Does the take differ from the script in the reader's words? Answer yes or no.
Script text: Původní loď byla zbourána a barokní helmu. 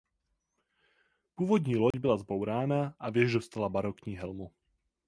yes